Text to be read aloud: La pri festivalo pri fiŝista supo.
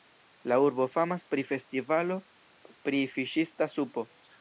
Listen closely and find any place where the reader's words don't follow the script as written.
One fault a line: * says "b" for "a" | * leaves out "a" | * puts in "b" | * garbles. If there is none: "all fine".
* puts in "urbo famas"